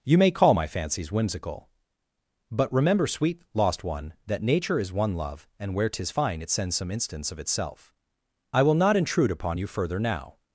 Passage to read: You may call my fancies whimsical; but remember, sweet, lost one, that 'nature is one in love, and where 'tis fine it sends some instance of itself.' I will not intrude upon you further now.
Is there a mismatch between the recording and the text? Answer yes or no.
yes